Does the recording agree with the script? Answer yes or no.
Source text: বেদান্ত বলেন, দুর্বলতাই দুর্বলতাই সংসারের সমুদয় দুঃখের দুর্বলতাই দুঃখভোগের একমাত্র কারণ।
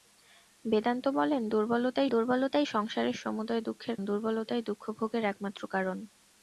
yes